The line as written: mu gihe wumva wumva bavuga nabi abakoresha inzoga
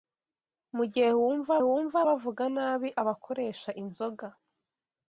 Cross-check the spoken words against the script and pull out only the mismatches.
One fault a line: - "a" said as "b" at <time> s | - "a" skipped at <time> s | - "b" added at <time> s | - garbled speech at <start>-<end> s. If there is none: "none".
none